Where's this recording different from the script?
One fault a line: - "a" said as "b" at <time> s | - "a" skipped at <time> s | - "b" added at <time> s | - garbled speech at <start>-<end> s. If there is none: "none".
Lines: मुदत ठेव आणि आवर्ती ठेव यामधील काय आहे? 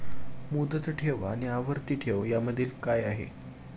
none